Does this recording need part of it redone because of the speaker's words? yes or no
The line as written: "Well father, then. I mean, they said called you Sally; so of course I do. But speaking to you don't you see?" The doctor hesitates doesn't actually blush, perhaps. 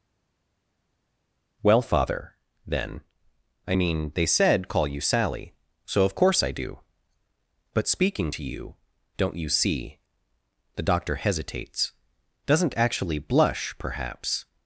yes